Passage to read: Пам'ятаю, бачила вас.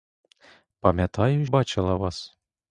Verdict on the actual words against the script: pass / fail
pass